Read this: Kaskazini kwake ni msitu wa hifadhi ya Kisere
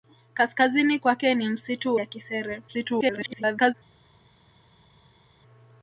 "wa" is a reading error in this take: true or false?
true